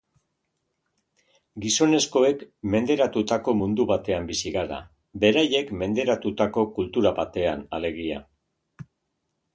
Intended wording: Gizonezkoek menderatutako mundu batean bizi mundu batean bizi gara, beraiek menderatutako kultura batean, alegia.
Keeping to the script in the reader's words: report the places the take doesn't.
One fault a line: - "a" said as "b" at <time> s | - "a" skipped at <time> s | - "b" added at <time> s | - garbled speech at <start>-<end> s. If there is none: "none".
- "mundu batean bizi" skipped at 4.5 s